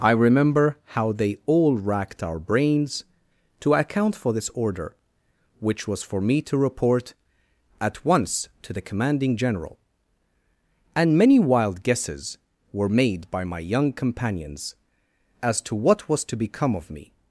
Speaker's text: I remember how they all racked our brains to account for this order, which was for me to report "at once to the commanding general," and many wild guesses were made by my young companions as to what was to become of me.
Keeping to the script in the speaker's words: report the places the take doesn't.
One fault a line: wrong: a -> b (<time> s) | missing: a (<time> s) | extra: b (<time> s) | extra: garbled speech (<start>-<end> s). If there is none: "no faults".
no faults